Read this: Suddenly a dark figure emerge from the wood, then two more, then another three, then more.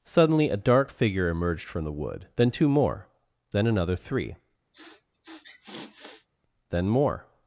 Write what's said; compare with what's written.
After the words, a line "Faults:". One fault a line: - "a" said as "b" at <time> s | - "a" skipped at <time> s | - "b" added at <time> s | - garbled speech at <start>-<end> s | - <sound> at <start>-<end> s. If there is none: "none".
Suddenly a dark figure emerged from the wood, then two more, then another three, then more.
Faults:
- "emerge" said as "emerged" at 1.3 s
- sniff at 4.7-6.3 s